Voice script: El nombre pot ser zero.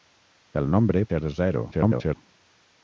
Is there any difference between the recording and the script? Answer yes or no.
yes